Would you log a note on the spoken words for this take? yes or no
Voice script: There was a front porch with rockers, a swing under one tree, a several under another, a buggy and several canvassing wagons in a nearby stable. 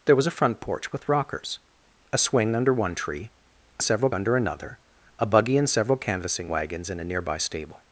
no